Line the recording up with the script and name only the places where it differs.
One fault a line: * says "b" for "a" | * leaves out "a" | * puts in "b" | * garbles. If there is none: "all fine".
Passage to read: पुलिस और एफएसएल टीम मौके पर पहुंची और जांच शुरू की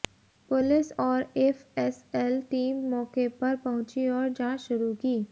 all fine